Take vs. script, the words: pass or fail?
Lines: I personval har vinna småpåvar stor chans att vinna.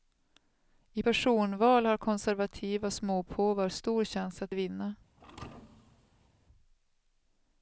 fail